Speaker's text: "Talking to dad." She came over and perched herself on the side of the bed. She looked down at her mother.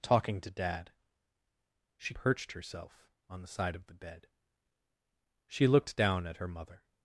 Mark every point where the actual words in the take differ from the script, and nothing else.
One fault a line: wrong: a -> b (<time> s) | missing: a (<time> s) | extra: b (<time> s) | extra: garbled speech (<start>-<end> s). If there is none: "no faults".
missing: came over and (2.1 s)